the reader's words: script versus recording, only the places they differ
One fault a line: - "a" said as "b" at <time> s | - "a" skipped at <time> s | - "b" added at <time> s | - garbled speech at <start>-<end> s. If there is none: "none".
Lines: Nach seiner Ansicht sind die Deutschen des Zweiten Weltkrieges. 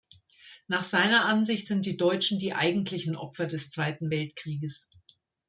- "die eigentlichen Opfer" added at 2.4 s